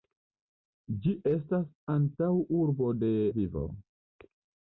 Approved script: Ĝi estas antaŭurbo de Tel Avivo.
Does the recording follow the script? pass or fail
fail